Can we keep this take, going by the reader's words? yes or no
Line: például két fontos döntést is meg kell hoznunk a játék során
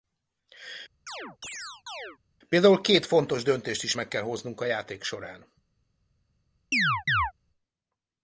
yes